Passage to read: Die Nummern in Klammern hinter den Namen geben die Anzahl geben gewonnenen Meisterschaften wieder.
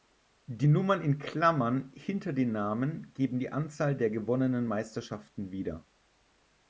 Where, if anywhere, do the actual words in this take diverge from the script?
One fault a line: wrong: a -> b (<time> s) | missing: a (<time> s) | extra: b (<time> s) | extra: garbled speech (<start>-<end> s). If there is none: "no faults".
wrong: geben -> der (4.0 s)